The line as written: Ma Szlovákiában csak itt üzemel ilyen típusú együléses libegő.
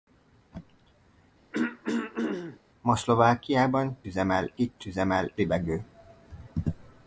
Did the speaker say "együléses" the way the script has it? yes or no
no